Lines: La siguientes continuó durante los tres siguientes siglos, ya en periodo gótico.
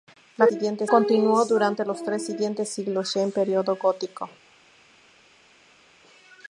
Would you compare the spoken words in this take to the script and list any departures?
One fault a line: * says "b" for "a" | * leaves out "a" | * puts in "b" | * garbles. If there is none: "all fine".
all fine